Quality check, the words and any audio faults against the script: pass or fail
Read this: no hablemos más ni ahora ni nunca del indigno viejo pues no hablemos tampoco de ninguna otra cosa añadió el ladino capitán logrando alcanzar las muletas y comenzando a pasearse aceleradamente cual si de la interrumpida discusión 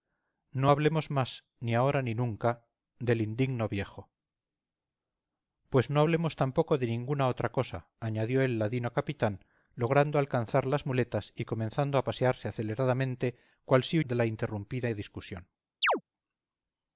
fail